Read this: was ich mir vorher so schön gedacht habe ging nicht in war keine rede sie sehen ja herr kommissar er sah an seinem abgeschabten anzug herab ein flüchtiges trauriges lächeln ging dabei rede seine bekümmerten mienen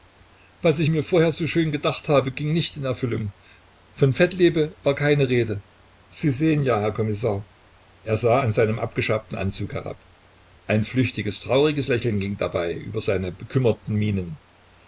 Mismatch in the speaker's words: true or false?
true